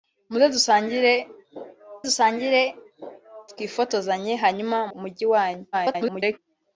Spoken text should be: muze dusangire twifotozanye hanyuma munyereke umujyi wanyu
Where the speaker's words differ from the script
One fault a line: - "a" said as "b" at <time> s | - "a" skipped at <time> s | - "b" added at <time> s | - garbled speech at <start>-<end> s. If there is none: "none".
- "dusangire" added at 2.1 s
- "munyereke" skipped at 4.8 s
- garbled speech at 5.7-6.4 s